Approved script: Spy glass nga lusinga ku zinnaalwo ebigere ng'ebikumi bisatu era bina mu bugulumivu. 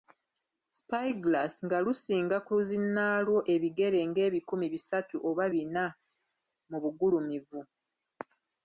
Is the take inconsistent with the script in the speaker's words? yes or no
yes